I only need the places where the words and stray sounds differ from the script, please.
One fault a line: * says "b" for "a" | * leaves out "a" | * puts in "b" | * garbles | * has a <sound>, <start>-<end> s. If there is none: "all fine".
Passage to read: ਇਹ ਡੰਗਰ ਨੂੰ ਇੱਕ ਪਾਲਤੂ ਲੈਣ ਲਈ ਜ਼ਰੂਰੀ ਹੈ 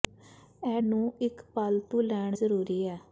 * leaves out "ਡੰਗਰ"
* leaves out "ਲਈ"